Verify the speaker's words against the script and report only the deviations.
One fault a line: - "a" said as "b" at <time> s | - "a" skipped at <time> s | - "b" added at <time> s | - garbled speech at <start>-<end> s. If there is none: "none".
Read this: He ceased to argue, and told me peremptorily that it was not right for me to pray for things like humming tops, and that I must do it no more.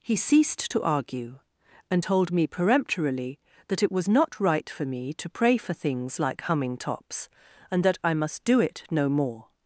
none